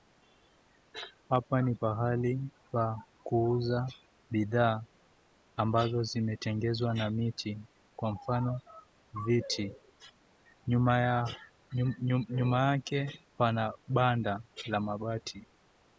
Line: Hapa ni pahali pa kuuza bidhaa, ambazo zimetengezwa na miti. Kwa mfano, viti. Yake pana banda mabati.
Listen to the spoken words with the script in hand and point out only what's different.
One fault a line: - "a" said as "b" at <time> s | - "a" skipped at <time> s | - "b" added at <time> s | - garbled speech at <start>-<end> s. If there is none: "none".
- "Nyuma" added at 12.4 s
- "la" added at 14.7 s